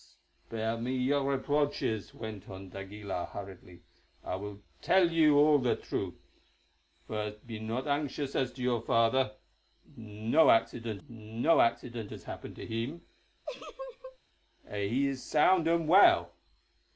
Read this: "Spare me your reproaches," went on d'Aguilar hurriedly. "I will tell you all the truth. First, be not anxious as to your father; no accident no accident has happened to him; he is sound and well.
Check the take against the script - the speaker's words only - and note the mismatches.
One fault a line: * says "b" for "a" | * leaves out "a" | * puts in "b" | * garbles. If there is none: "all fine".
all fine